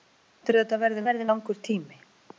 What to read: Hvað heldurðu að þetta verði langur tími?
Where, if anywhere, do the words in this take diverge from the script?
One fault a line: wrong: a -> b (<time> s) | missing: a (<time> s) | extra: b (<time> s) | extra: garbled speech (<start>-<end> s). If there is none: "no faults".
extra: verði (1.1 s)